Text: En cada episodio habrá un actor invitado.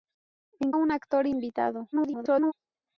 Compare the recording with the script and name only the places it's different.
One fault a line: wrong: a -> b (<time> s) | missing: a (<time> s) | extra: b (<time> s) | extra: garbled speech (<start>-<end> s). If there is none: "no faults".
missing: cada episodio habrá (0.7 s)
extra: garbled speech (1.9-2.5 s)